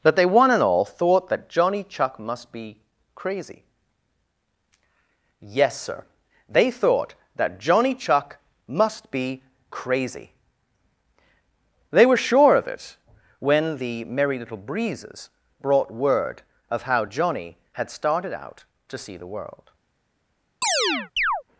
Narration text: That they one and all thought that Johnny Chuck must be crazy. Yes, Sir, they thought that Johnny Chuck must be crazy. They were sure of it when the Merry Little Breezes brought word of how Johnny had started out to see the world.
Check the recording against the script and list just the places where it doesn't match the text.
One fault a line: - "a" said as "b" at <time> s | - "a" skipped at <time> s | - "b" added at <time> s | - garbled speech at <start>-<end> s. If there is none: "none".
none